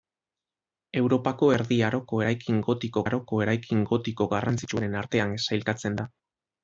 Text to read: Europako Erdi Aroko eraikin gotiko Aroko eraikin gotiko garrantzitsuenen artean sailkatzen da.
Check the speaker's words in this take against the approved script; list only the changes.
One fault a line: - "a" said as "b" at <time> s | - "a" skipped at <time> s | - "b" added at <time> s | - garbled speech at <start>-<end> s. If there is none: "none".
none